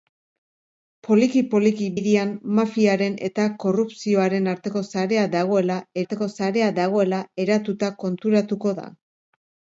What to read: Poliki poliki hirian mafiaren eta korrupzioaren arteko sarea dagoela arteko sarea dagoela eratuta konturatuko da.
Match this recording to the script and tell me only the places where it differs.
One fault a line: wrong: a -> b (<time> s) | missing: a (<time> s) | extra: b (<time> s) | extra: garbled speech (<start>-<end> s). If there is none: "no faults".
no faults